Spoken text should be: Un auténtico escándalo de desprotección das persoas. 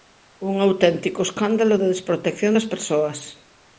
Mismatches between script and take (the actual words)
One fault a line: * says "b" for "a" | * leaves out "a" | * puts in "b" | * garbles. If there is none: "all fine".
all fine